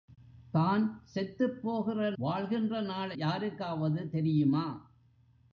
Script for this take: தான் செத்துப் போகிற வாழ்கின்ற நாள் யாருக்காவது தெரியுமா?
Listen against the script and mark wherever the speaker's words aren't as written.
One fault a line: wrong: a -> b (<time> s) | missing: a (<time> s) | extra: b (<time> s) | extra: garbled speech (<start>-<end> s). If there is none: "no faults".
no faults